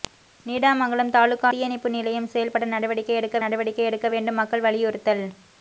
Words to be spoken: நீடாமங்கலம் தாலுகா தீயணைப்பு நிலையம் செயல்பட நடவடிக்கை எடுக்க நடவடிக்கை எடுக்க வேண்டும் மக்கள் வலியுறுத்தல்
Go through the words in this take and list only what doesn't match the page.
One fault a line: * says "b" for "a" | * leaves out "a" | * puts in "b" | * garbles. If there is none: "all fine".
all fine